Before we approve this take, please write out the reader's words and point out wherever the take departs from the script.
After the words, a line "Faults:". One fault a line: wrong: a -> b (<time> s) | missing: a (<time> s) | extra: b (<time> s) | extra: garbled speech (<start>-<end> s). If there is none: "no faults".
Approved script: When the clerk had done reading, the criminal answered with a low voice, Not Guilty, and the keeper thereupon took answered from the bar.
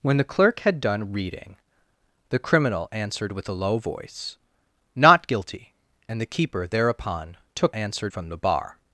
When the clerk had done reading, the criminal answered with a low voice, Not Guilty, and the keeper thereupon took answered from the bar.
Faults:
no faults